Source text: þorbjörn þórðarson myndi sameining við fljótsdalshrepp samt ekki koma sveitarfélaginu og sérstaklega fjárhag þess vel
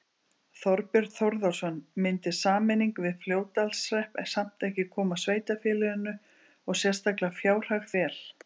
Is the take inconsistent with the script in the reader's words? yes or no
yes